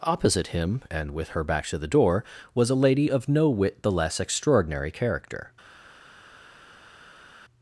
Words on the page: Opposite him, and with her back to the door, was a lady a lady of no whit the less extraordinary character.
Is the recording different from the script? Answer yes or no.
yes